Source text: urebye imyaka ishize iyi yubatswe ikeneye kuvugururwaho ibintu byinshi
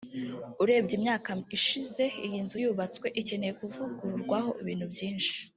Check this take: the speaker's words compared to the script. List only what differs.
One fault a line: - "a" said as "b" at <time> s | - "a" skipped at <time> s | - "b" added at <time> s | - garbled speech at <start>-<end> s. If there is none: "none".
- "nzu" added at 2.5 s